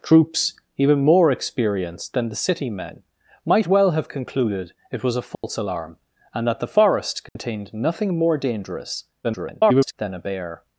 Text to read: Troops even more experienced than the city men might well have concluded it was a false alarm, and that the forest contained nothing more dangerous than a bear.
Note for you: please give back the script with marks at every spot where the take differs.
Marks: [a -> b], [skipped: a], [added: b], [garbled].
Troops even more experienced than the city men might well have concluded it was a false alarm, and that the forest contained nothing more dangerous [garbled] than a bear.